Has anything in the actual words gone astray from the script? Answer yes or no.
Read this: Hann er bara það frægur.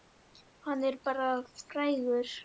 yes